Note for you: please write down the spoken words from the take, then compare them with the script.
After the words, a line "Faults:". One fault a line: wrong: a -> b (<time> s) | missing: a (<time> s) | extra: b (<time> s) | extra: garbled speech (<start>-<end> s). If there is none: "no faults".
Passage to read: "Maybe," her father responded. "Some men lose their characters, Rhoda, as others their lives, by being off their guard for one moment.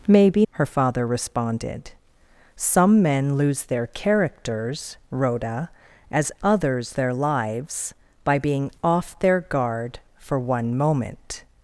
"Maybe," her father responded. "Some men lose their characters, Rhoda, as others their lives, by being off their guard for one moment.
Faults:
no faults